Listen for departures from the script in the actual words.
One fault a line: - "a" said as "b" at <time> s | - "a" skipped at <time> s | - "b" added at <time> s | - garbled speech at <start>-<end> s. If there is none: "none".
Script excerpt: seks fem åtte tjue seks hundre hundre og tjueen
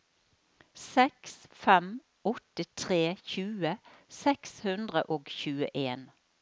- "tre" added at 2.8 s
- "hundre" skipped at 5.0 s